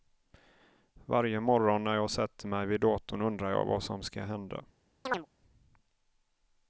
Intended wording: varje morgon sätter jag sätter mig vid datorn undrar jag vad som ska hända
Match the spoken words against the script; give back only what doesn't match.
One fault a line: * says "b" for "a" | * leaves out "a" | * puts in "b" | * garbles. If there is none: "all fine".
* says "när" for "sätter"